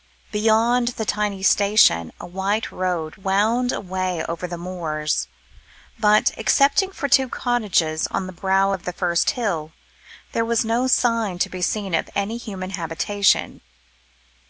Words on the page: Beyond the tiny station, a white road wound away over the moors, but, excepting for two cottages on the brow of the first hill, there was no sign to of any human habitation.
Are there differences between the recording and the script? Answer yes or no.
yes